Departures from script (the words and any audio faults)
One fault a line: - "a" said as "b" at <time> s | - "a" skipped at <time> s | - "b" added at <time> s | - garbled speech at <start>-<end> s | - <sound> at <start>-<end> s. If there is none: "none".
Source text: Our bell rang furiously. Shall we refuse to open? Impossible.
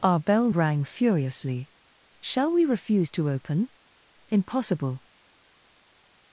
none